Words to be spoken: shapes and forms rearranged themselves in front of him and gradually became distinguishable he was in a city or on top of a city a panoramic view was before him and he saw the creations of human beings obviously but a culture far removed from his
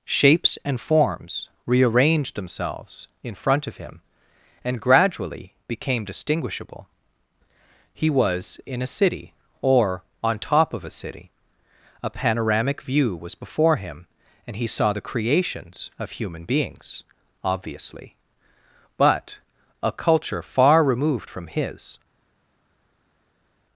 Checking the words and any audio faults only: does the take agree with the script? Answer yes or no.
yes